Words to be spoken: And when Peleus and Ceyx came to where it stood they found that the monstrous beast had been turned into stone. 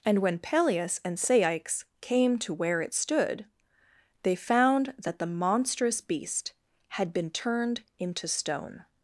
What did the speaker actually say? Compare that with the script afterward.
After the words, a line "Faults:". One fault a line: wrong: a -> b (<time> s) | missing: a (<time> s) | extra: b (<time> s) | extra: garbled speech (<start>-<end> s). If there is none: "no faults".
And when Peleus and Ceyx came to where it stood they found that the monstrous beast had been turned into stone.
Faults:
no faults